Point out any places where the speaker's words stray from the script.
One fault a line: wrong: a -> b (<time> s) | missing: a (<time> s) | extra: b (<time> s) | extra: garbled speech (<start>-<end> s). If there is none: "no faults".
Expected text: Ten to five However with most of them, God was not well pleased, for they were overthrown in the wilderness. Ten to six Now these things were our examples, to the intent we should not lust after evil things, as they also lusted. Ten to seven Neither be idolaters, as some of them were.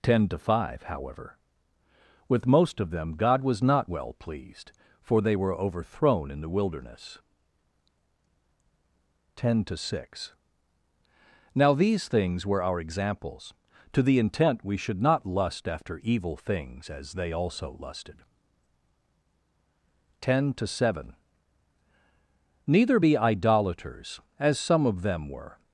no faults